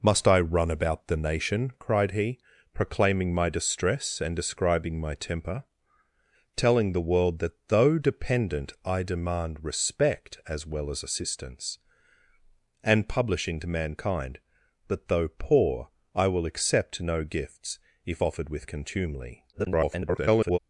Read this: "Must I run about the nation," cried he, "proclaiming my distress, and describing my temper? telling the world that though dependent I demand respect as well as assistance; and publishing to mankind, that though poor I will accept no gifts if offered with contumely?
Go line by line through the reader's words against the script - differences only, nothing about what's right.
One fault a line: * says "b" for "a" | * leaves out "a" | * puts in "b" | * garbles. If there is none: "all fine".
* garbles